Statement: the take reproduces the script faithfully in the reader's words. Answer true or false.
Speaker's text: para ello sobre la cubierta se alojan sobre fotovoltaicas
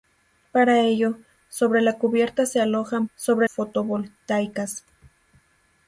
true